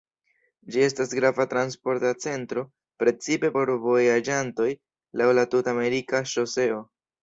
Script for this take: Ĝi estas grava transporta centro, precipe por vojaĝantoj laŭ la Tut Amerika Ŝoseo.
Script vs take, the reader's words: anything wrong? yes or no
no